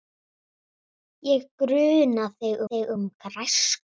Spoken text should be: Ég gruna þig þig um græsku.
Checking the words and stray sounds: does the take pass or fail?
pass